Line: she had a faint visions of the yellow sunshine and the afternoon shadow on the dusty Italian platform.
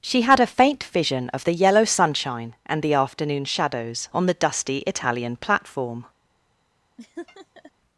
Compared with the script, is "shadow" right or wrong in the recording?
wrong